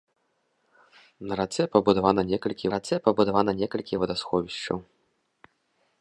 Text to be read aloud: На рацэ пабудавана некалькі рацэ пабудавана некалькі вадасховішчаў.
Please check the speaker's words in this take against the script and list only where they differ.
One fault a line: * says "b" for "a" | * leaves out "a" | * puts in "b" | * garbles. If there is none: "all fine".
all fine